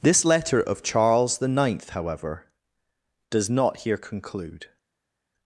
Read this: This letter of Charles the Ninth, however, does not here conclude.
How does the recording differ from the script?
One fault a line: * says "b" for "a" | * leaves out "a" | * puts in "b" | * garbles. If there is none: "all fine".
all fine